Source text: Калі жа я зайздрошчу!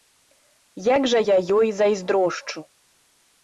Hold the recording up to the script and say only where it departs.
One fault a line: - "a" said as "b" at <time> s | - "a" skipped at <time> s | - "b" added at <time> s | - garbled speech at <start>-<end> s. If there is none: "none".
- "Калі" said as "Як" at 0.9 s
- "ёй" added at 1.6 s